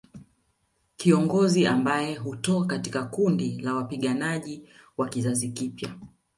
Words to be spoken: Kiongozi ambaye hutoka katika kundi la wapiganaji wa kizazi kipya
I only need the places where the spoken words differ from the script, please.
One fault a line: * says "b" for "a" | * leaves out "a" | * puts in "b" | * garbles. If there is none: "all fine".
all fine